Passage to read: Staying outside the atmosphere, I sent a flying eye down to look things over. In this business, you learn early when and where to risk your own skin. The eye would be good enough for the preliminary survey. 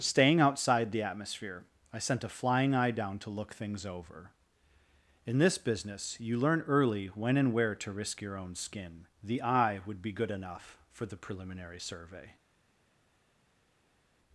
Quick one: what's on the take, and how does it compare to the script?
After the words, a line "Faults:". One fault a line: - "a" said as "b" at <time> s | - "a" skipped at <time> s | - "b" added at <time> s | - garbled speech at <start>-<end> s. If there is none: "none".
Staying outside the atmosphere, I sent a flying eye down to look things over. In this business, you learn early when and where to risk your own skin. The eye would be good enough for the preliminary survey.
Faults:
none